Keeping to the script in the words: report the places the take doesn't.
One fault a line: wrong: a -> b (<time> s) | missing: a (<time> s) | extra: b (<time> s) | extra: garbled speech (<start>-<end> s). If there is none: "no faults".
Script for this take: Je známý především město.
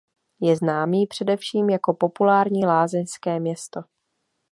extra: jako populární lázeňské (1.7 s)